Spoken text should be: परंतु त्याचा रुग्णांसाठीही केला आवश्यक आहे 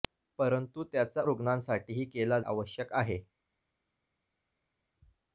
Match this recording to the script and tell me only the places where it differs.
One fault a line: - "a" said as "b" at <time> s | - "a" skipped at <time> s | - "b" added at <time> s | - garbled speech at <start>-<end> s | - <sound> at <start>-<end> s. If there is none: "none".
none